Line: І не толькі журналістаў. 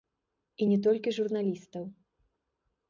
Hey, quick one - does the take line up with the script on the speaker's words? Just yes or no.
yes